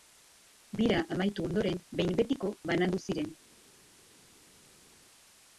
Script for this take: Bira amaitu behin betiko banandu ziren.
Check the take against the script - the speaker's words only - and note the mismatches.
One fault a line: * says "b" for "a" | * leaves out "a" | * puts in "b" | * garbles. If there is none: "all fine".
* puts in "ondoren"